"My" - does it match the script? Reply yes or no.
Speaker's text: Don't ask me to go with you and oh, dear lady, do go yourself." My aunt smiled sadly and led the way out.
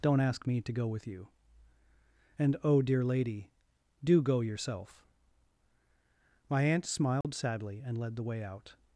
yes